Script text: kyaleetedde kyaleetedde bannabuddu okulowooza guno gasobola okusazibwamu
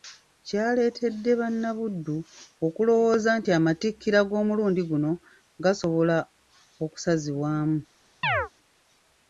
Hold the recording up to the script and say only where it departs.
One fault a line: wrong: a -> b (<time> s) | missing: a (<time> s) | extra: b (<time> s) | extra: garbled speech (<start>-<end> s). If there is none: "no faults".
missing: kyaleetedde (1.3 s)
extra: nti amatikkira g'omulundi (3.4 s)